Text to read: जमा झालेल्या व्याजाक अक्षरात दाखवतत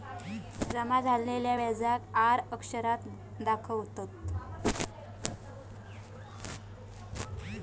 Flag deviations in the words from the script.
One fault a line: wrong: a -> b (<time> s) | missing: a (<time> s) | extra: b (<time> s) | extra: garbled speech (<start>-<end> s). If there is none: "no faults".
extra: आर (2.2 s)